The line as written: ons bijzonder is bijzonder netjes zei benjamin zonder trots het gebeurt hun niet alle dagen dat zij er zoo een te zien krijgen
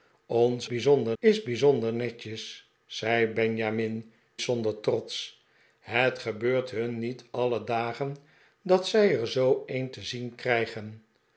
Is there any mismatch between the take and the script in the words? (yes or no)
no